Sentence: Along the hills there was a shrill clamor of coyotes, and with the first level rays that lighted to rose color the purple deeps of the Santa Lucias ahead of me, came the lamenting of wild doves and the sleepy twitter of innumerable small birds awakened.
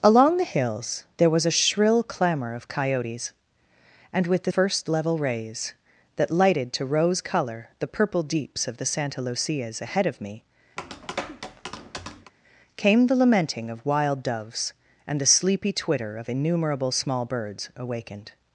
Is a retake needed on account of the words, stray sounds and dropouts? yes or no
yes